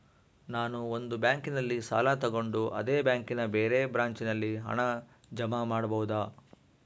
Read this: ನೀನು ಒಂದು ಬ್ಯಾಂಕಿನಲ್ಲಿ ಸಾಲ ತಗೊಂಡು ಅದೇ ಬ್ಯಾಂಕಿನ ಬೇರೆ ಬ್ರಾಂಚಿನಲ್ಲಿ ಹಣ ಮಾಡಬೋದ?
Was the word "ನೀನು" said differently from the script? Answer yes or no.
yes